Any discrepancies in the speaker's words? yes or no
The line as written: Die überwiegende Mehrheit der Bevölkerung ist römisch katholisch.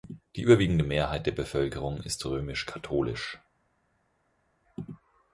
no